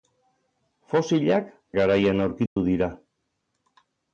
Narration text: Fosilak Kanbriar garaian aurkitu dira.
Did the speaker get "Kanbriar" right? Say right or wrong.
wrong